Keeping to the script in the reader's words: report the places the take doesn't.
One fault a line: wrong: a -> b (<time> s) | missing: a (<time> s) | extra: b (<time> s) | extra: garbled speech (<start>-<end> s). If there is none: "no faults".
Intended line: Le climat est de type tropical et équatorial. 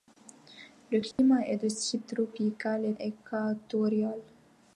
no faults